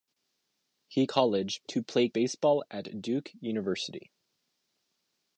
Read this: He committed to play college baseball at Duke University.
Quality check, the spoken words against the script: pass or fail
fail